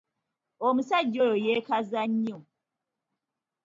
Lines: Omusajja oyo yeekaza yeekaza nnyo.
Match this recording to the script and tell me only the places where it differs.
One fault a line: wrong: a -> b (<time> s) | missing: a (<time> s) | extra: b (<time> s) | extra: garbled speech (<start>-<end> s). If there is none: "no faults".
missing: yeekaza (2.0 s)